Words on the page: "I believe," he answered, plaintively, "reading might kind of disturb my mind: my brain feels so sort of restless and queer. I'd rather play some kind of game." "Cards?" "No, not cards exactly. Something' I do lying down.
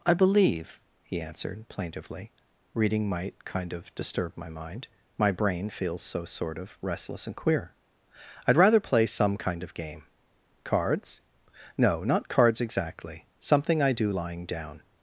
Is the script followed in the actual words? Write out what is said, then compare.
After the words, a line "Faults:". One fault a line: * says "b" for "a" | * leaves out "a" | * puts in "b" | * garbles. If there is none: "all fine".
"I believe," he answered, plaintively, "reading might kind of disturb my mind: my brain feels so sort of restless and queer. I'd rather play some kind of game." "Cards?" "No, not cards exactly. Something' I do lying down.
Faults:
all fine